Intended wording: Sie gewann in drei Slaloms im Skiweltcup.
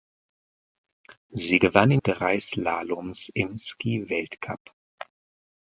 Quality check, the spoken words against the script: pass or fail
pass